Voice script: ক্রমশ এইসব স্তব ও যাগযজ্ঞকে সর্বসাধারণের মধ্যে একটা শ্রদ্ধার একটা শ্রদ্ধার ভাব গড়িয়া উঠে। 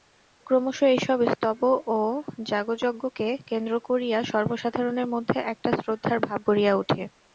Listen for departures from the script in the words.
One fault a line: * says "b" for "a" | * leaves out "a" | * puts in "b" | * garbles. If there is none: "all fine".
* puts in "কেন্দ্র করিয়া"
* leaves out "একটা শ্রদ্ধার"